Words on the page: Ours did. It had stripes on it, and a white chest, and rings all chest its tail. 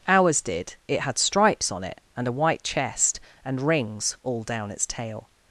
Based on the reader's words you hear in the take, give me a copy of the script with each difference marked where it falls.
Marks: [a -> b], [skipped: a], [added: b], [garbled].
Ours did. It had stripes on it, and a white chest, and rings all [chest -> down] its tail.